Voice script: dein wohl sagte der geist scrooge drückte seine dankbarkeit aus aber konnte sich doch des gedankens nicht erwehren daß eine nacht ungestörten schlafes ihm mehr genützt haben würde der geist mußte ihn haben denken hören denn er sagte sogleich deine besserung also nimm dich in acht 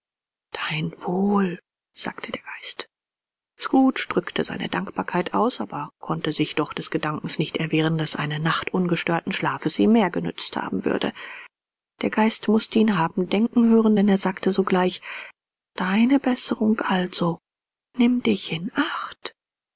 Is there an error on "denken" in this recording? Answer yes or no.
no